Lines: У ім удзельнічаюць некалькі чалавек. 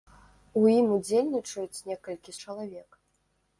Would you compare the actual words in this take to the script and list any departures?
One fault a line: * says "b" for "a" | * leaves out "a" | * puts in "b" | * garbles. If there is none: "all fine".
all fine